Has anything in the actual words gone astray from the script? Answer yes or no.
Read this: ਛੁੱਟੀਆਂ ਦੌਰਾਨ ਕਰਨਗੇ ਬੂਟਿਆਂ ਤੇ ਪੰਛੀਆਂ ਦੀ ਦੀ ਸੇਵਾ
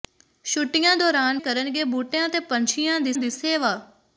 no